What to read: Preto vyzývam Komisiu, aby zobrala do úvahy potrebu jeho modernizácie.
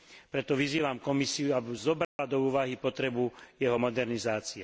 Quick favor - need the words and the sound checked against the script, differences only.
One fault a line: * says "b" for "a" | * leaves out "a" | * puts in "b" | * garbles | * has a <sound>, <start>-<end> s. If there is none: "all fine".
* has a dropout, 2.0-2.2 s